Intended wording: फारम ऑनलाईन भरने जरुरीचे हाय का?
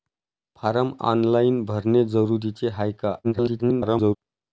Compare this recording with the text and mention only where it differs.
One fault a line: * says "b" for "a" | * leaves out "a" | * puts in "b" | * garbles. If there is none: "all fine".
* garbles